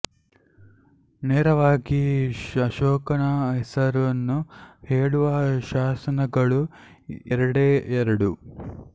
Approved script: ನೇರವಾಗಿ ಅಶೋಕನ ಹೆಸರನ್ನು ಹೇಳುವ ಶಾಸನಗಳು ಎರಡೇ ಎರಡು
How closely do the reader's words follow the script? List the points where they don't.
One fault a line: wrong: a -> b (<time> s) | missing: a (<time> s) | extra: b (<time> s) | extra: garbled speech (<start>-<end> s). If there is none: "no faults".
no faults